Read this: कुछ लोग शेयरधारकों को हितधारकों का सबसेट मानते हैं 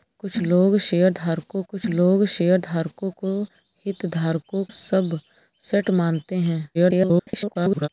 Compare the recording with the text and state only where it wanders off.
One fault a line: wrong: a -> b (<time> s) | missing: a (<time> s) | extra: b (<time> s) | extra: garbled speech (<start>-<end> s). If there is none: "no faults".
extra: कुछ लोग शेयरधारकों (1.7 s)
missing: का (4.6 s)
extra: garbled speech (6.7-7.9 s)